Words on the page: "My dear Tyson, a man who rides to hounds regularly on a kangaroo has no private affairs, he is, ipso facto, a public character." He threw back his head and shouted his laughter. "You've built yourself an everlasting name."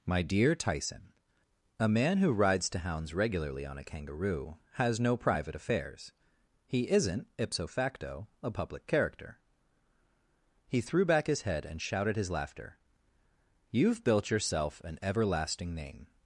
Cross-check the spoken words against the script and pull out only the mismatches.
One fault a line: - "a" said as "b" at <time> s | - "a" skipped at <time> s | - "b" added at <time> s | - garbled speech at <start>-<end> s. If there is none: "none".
- "is" said as "isn't" at 6.9 s